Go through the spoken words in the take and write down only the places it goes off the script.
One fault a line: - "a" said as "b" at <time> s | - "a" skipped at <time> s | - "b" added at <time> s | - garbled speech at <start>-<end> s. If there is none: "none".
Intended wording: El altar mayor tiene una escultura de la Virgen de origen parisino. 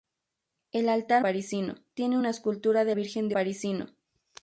- "mayor" said as "parisino" at 1.2 s
- "la" skipped at 2.9 s
- "origen" skipped at 3.4 s